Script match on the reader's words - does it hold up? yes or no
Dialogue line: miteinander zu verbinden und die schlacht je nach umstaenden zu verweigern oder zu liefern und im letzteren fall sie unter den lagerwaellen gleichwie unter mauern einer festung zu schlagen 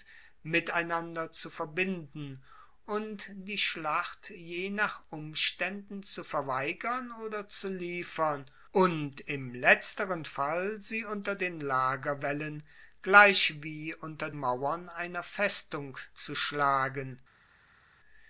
yes